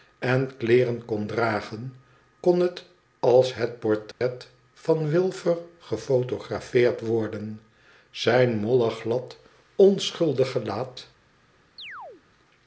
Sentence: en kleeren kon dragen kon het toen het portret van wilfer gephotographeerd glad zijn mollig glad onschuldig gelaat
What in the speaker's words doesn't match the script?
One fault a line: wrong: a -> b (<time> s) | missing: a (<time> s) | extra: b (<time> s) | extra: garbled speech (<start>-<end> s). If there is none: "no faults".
wrong: toen -> als (3.2 s)
wrong: glad -> worden (7.0 s)